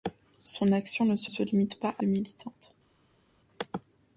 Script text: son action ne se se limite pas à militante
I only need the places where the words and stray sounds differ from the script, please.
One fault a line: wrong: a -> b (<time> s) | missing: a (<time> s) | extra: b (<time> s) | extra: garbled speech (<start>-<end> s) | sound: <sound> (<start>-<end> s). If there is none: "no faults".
no faults